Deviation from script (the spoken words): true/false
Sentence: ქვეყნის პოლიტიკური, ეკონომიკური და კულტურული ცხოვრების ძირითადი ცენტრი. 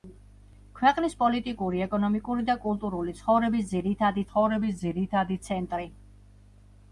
true